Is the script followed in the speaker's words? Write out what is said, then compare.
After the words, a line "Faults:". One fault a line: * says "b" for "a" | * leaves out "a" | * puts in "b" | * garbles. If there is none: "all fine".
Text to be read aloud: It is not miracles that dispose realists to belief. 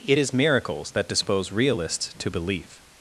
It is miracles that dispose realists to belief.
Faults:
* leaves out "not"